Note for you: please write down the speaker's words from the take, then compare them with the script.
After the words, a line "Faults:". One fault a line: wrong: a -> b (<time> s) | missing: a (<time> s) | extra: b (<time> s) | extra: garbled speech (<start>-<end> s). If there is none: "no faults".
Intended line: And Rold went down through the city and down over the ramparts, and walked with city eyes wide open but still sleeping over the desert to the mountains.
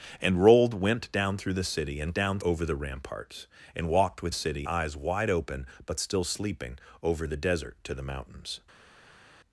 And Rold went down through the city and down over the ramparts, and walked with city eyes wide open but still sleeping over the desert to the mountains.
Faults:
no faults